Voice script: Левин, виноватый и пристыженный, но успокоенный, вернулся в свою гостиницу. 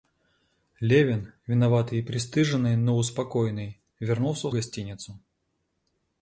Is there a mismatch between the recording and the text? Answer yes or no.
yes